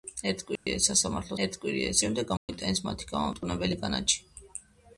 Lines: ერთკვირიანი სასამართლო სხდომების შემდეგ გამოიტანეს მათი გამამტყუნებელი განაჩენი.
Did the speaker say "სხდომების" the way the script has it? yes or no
no